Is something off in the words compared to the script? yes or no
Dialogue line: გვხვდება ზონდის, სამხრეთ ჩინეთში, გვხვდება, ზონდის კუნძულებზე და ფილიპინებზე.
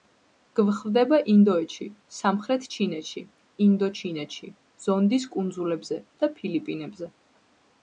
yes